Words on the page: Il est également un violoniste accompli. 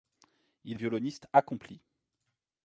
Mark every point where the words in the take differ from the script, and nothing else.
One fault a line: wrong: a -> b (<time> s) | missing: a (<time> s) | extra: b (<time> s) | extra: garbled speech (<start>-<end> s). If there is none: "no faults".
missing: est également (0.8 s)